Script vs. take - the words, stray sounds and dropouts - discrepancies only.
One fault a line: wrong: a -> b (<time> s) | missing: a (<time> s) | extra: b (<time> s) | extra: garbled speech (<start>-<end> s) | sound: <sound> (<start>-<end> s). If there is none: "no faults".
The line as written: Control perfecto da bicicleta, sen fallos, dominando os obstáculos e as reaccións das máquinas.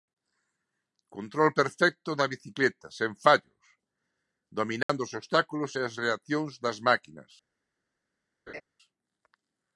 sound: dropout (4.8-4.9 s)
sound: laugh (8.5-8.6 s)